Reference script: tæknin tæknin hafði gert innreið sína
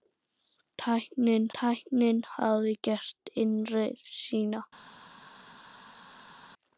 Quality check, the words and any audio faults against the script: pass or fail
pass